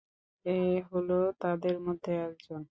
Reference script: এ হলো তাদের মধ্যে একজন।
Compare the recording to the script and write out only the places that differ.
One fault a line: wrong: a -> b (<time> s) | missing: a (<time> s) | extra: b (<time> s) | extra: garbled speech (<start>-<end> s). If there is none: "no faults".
no faults